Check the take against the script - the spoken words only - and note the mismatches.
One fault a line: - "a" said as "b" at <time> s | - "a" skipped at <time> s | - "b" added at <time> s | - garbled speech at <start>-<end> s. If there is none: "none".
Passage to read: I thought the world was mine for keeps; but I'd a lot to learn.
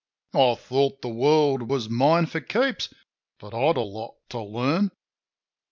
none